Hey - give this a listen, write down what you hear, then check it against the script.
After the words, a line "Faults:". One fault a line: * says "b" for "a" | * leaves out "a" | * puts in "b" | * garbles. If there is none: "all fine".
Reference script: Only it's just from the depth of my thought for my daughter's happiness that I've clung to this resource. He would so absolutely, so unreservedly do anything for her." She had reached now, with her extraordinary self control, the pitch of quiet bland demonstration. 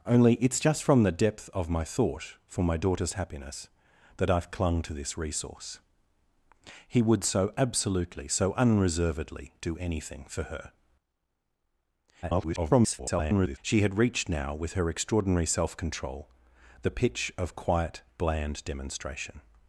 Only it's just from the depth of my thought for my daughter's happiness that I've clung to this resource. He would so absolutely, so unreservedly do anything for her." [garbled] She had reached now, with her extraordinary self control, the pitch of quiet bland demonstration.
Faults:
* garbles